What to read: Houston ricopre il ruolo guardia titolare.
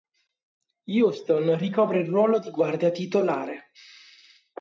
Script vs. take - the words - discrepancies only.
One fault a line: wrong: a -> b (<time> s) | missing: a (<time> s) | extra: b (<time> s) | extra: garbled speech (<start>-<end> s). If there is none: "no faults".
extra: di (2.4 s)